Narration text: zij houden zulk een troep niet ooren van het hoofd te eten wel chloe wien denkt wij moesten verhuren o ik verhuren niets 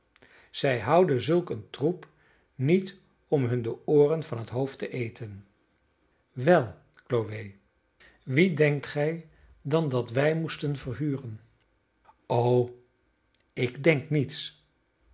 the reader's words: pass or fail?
fail